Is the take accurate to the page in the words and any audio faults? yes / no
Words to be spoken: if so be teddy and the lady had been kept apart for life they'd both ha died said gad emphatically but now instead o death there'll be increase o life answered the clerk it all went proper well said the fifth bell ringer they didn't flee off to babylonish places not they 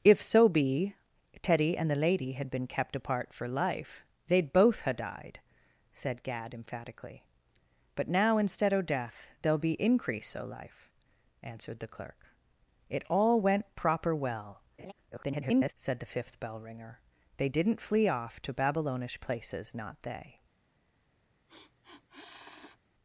no